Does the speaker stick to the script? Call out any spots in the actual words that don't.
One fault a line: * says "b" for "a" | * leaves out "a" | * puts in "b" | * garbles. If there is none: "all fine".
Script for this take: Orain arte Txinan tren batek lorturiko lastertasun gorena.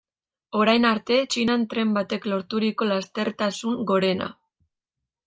all fine